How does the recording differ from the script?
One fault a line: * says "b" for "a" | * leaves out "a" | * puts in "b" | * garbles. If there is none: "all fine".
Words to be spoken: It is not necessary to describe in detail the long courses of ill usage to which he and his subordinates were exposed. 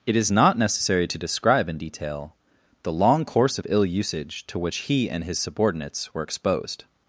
* says "course" for "courses"